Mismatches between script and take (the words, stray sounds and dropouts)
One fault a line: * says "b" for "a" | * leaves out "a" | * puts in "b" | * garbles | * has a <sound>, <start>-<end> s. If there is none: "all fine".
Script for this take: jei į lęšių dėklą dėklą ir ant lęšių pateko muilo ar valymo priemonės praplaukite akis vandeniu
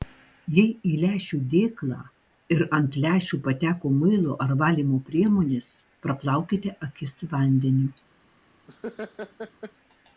* leaves out "dėklą"
* has a laugh, 8.7-9.7 s